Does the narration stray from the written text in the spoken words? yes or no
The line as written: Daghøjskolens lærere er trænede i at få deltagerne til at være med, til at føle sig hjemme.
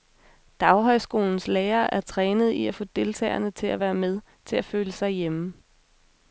no